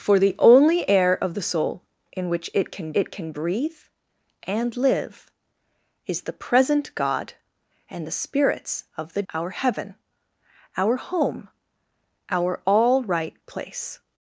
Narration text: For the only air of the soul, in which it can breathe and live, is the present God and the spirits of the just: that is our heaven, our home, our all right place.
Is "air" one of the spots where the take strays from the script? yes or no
no